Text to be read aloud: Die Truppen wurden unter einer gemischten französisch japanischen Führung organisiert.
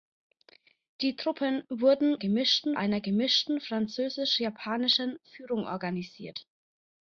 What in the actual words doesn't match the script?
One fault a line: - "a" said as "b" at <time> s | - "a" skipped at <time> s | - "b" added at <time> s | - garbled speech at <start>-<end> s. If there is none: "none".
- "unter" said as "gemischten" at 2.2 s